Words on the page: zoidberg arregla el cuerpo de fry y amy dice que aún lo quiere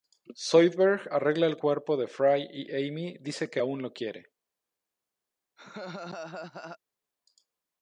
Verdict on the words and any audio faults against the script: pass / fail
fail